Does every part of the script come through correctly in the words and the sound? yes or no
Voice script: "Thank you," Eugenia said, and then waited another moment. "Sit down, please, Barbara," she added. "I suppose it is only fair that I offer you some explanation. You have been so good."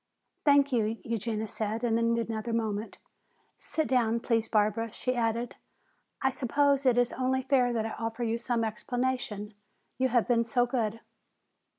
no